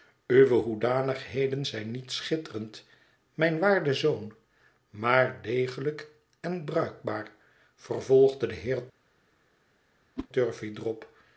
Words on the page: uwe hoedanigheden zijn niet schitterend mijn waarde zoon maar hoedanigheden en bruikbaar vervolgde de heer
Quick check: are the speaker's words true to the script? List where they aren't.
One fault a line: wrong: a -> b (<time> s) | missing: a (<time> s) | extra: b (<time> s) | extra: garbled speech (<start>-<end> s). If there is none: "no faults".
wrong: hoedanigheden -> degelijk (5.4 s)